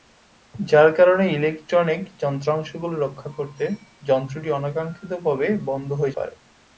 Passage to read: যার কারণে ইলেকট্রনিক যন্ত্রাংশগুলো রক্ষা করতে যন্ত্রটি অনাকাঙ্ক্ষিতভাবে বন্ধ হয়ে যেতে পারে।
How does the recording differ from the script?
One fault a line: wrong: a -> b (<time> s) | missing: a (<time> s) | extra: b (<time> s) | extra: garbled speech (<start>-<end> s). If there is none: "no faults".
missing: যেতে (6.2 s)